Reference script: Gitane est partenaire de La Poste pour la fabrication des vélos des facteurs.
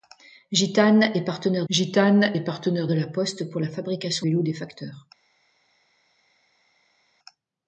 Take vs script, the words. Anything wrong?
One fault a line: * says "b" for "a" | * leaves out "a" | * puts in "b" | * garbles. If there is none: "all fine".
* puts in "gitane est partenaire"
* leaves out "des"